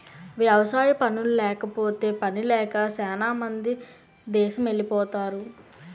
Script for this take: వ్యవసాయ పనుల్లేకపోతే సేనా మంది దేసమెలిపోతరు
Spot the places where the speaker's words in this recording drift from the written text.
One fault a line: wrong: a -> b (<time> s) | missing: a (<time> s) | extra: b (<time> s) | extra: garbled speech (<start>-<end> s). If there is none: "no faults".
extra: పనిలేక (2.2 s)